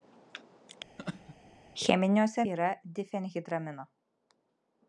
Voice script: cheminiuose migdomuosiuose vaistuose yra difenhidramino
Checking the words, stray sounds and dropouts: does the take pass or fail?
fail